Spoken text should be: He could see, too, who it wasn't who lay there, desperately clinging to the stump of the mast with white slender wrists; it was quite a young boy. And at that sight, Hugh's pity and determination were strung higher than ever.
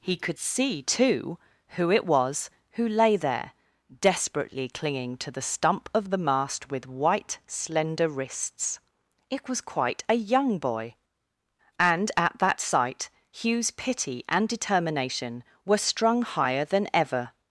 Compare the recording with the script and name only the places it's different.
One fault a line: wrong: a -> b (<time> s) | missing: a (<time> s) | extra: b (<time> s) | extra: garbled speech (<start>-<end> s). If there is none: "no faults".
wrong: wasn't -> was (2.0 s)